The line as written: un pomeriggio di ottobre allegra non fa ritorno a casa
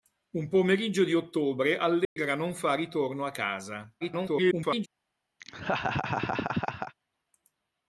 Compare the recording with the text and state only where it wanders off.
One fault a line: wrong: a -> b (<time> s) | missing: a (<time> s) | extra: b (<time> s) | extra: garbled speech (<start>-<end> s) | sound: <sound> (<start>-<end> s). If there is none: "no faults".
sound: dropout (2.0-2.2 s)
extra: garbled speech (4.0-4.9 s)
sound: laugh (5.4-6.9 s)